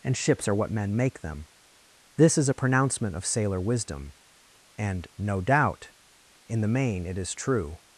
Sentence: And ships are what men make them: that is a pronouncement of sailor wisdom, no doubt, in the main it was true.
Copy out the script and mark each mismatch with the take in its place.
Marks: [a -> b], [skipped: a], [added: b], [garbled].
And ships are what men make them: [that -> this] is a pronouncement of sailor wisdom, [added: and] no doubt, in the main it [was -> is] true.